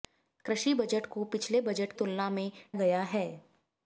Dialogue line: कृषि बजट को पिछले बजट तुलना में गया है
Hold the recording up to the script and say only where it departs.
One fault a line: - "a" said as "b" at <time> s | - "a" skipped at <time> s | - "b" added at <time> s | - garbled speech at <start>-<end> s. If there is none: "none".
none